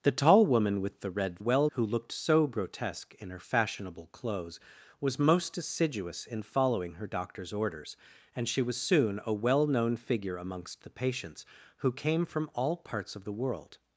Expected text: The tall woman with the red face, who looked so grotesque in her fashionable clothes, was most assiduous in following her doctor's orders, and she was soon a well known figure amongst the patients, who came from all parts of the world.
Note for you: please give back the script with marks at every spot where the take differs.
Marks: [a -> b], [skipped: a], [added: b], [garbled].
The tall woman with the red [face, -> well] who looked so grotesque in her fashionable clothes, was most assiduous in following her doctor's orders, and she was soon a well known figure amongst the patients, who came from all parts of the world.